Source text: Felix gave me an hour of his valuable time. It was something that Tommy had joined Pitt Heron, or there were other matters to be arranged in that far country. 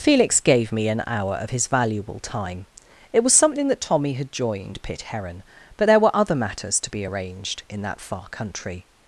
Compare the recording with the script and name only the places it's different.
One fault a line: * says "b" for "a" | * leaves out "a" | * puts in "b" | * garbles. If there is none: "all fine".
* says "but" for "or"